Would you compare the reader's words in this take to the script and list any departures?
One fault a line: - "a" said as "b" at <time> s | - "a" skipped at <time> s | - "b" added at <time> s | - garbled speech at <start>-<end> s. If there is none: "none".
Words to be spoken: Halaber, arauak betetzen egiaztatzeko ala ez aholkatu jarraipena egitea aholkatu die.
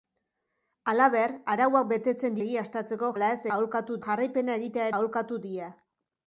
none